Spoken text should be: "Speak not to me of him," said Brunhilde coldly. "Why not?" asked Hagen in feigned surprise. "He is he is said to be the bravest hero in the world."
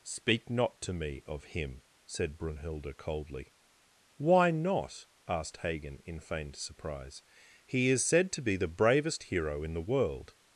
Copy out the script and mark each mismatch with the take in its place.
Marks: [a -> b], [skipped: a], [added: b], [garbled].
"Speak not to me of him," said Brunhilde coldly. "Why not?" asked Hagen in feigned surprise. "He is [skipped: he is] said to be the bravest hero in the world."